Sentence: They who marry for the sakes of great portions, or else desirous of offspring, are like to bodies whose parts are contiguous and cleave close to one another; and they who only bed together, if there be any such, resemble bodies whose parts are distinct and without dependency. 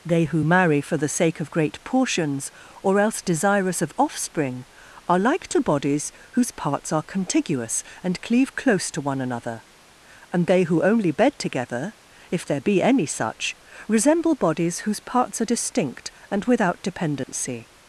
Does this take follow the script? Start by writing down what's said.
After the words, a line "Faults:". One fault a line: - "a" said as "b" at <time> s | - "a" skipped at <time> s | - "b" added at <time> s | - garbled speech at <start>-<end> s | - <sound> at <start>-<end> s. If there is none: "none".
They who marry for the sake of great portions, or else desirous of offspring, are like to bodies whose parts are contiguous and cleave close to one another; and they who only bed together, if there be any such, resemble bodies whose parts are distinct and without dependency.
Faults:
- "sakes" said as "sake" at 1.1 s
- dropout at 17.2-17.3 s